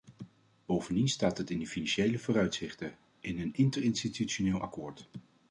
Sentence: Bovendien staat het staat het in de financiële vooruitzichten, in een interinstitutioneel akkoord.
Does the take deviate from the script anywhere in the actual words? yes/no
yes